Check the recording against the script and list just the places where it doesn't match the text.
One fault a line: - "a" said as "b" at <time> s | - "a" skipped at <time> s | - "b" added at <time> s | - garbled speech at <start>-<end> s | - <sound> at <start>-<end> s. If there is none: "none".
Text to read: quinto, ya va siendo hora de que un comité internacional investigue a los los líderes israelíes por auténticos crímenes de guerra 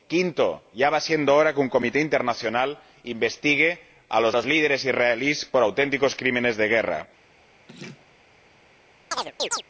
- laugh at 7.7-8.1 s
- chirp at 9.1-9.6 s